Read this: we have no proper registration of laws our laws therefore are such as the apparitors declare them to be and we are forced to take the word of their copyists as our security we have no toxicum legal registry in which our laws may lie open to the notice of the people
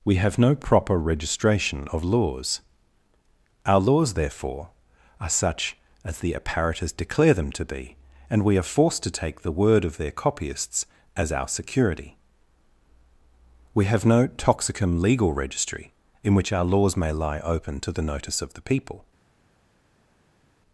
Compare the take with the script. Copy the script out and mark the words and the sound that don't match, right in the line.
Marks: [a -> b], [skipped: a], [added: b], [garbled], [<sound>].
we have no proper registration of laws our laws therefore are such as the apparitors declare them to be and we are forced to take the word of their copyists as our security we have no toxicum legal registry in which our laws may lie open to the notice of the people